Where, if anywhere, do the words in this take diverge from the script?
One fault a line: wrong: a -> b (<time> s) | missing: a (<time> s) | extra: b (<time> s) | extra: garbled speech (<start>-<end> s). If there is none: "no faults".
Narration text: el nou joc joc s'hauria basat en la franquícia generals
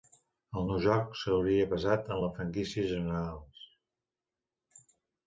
missing: joc (1.2 s)